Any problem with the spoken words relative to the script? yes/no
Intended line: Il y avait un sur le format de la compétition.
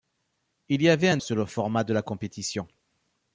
no